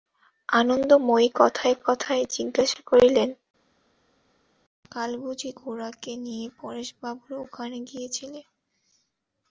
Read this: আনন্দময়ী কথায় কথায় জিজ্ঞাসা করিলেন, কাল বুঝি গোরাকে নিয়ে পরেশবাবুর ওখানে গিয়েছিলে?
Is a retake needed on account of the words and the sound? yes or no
no